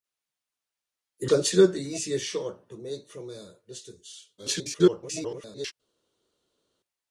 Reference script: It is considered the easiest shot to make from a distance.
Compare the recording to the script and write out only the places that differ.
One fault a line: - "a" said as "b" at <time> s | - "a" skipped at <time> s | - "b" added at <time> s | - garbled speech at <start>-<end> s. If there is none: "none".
- "is" skipped at 1.3 s
- garbled speech at 4.4-5.7 s